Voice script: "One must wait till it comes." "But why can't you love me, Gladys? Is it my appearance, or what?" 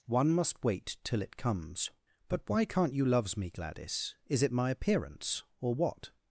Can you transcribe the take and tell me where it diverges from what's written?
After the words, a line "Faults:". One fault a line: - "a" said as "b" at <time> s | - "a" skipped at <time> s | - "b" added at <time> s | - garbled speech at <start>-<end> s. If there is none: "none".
"One must wait till it comes." "But why can't you loves me, Gladys? Is it my appearance, or what?"
Faults:
- "love" said as "loves" at 3.0 s